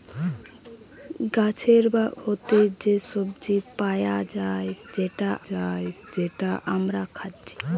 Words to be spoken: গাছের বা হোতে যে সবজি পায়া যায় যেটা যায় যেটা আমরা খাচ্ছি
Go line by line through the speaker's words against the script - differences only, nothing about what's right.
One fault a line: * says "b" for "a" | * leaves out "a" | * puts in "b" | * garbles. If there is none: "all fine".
all fine